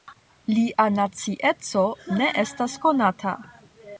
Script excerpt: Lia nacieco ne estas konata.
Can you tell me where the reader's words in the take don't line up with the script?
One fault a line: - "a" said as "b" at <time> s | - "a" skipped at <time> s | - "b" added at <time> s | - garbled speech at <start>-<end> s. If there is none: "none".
none